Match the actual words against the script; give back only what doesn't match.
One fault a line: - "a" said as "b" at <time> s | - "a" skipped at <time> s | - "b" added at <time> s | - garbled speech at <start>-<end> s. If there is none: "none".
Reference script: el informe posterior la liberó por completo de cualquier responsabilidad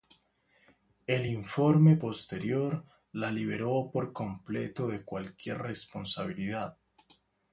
none